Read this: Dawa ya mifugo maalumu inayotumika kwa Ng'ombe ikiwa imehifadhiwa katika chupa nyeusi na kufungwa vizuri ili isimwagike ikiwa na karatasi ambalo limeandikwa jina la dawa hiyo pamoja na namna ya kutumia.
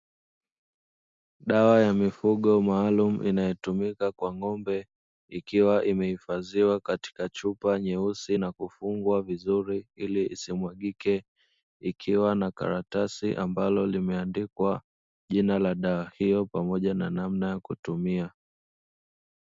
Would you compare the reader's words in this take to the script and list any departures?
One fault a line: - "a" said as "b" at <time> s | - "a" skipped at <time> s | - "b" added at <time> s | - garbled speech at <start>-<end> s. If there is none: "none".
none